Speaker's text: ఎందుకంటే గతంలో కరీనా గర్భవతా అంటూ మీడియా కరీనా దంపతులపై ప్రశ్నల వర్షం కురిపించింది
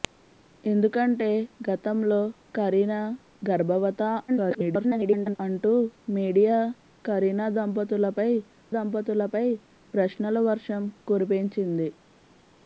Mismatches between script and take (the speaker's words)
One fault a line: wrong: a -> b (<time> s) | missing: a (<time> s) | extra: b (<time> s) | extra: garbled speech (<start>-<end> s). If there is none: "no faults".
extra: garbled speech (4.3-5.4 s)
extra: దంపతులపై (8.8 s)